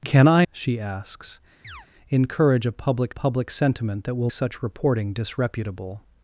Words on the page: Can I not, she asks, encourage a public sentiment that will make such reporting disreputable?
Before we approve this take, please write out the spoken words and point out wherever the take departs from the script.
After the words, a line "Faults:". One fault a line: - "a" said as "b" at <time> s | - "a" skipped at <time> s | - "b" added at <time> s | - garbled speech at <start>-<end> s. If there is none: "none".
Can I she asks, encourage a public public sentiment that will such reporting disreputable?
Faults:
- "not" skipped at 0.5 s
- "public" added at 3.1 s
- "make" skipped at 4.3 s